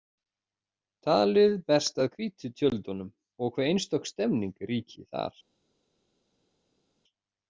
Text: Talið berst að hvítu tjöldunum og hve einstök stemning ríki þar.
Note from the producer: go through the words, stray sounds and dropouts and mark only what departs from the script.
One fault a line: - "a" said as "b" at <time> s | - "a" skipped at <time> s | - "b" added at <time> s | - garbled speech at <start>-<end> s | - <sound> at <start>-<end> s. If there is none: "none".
none